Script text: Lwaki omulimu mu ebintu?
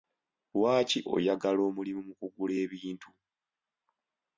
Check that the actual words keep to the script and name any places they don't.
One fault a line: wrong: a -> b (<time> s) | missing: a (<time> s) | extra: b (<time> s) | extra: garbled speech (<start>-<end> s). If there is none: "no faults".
extra: oyagala (1.1 s)
extra: kugula (2.2 s)